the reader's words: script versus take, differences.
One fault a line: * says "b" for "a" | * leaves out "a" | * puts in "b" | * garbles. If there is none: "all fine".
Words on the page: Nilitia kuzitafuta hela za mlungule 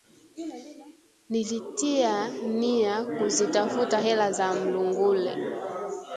* puts in "nia"